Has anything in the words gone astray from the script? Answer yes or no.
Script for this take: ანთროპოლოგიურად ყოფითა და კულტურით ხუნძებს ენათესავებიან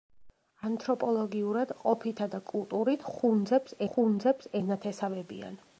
yes